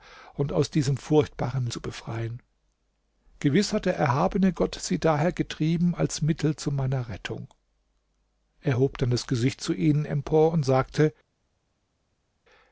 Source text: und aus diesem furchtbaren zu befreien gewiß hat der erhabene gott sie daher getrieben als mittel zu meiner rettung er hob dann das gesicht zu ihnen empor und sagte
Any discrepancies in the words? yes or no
no